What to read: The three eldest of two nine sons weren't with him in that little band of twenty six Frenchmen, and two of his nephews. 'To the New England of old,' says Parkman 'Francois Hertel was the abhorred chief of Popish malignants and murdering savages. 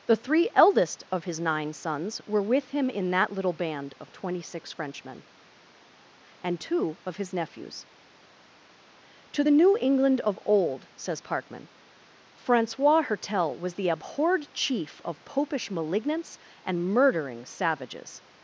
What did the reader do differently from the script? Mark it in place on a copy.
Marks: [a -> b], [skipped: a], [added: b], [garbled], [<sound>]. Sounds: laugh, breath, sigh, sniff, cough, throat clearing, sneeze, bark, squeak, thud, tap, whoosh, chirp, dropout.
The three eldest of [two -> his] nine sons [weren't -> were] with him in that little band of twenty six Frenchmen, and two of his nephews. 'To the New England of old,' says Parkman 'Francois Hertel was the abhorred chief of Popish malignants and murdering savages.